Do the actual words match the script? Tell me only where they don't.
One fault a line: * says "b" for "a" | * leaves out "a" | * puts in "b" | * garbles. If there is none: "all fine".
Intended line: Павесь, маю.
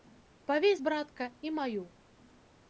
* puts in "братка і"